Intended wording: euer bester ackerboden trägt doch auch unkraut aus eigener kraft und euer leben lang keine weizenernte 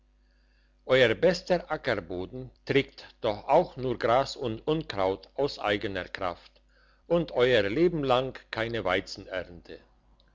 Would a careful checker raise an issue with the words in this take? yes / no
yes